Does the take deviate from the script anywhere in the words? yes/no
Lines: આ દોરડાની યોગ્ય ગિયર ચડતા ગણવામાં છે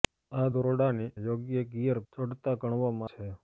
no